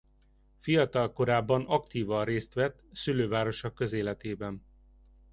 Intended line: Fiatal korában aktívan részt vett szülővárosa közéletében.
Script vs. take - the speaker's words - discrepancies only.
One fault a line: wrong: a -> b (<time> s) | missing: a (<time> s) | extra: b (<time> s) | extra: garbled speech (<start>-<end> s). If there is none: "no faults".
no faults